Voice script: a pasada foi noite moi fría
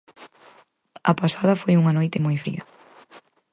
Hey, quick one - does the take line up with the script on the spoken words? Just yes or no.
no